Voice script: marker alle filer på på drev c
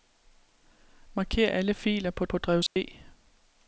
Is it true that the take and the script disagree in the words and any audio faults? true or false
true